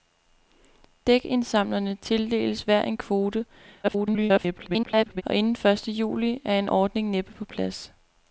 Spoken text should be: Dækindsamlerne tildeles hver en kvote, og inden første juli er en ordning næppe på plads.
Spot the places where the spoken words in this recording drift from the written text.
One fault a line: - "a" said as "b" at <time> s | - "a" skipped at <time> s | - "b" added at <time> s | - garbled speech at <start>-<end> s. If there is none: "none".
- garbled speech at 3.8-5.2 s